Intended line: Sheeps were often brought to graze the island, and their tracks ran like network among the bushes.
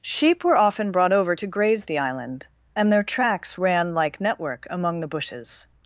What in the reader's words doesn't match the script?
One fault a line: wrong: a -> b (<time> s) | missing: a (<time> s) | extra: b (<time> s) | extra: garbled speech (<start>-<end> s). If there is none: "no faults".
wrong: Sheeps -> Sheep (0.0 s)
extra: over (1.1 s)